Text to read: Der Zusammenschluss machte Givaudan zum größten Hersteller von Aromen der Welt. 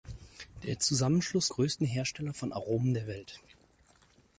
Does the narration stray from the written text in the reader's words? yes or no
yes